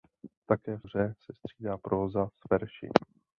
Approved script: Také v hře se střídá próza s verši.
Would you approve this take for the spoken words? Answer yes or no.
yes